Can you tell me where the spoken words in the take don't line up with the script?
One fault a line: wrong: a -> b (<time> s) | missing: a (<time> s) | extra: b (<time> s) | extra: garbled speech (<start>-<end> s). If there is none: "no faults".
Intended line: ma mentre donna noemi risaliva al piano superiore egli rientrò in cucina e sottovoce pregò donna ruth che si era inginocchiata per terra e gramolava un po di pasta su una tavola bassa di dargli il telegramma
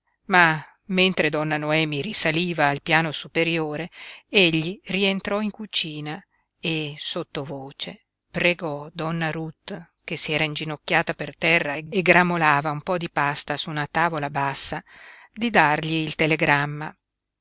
no faults